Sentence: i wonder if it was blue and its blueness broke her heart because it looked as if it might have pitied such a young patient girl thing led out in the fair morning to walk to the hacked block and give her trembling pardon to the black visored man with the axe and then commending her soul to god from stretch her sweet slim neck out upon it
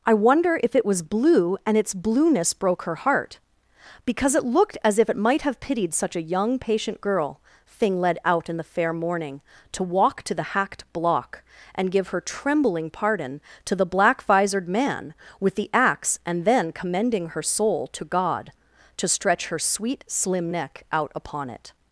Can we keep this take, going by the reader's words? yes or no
no